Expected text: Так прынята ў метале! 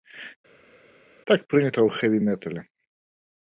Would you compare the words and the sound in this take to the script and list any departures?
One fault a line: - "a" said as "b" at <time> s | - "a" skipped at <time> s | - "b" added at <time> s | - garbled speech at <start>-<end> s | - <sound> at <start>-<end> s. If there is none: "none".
- "хэві" added at 2.0 s